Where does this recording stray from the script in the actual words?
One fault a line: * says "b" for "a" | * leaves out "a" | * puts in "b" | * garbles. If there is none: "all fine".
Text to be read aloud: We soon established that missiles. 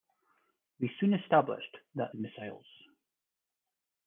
all fine